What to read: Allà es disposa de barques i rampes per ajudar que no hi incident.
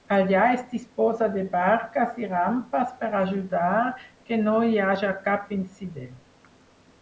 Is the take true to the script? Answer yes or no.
no